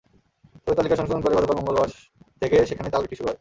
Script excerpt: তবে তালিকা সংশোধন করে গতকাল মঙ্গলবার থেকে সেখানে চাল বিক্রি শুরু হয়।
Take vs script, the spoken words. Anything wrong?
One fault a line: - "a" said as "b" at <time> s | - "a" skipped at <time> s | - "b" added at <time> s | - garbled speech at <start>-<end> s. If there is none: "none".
none